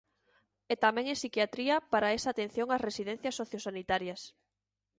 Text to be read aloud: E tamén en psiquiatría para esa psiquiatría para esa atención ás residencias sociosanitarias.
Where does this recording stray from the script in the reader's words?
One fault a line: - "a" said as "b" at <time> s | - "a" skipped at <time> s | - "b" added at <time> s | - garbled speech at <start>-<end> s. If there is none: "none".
- "psiquiatría para esa" skipped at 2.3 s